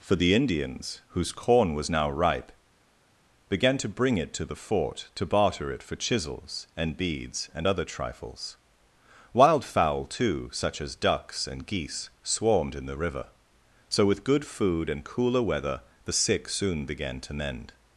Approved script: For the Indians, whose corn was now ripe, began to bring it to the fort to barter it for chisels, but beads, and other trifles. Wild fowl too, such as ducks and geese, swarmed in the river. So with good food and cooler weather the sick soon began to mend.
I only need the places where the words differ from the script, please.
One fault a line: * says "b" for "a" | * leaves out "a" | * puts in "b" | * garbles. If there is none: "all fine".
* says "and" for "but"